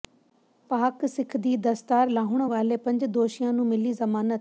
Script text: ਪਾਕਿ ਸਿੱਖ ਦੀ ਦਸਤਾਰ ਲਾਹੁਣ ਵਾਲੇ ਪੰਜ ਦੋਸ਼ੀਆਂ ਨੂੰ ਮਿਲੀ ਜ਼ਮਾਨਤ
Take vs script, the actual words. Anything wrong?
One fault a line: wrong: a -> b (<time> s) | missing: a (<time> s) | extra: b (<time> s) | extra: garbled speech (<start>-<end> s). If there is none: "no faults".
no faults